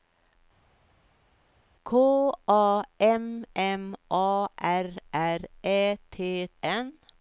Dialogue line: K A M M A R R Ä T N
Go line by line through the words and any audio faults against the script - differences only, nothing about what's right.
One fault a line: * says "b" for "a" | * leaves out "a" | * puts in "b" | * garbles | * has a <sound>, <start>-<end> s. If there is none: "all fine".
all fine